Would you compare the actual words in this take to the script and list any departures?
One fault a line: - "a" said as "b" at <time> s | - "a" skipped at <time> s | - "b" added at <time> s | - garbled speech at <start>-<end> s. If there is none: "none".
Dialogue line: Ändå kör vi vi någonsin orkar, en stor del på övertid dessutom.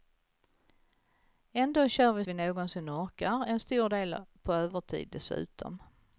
none